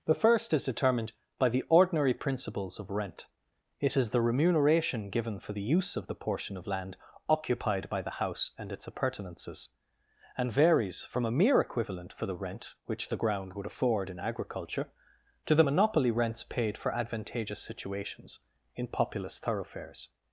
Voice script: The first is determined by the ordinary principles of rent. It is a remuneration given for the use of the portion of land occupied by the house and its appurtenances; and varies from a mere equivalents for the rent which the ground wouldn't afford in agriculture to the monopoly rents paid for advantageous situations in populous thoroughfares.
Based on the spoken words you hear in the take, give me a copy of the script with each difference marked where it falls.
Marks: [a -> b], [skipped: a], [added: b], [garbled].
The first is determined by the ordinary principles of rent. It is [a -> the] remuneration given for the use of the portion of land occupied by the house and its appurtenances; and varies from a mere [equivalents -> equivalent] for the rent which the ground [wouldn't -> would] afford in agriculture to the monopoly rents paid for advantageous situations in populous thoroughfares.